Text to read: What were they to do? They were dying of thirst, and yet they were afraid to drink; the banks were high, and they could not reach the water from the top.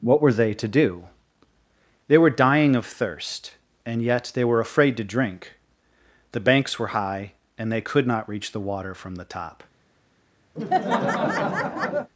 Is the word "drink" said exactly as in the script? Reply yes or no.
yes